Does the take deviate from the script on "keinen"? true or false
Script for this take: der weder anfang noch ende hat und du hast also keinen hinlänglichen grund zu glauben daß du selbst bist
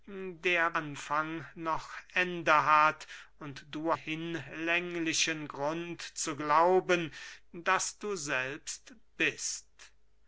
true